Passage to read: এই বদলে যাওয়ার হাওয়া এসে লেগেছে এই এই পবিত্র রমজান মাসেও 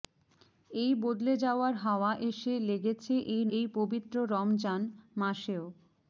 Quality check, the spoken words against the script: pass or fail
pass